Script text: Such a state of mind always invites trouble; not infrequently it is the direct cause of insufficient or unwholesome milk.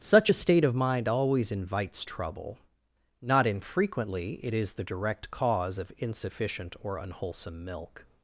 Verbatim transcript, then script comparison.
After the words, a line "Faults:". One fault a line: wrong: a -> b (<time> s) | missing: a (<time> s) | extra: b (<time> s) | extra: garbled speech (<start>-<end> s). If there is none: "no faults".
Such a state of mind always invites trouble; not infrequently it is the direct cause of insufficient or unwholesome milk.
Faults:
no faults